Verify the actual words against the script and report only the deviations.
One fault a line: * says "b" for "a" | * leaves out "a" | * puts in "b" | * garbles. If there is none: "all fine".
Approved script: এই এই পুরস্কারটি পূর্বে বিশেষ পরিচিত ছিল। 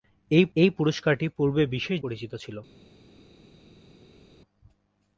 all fine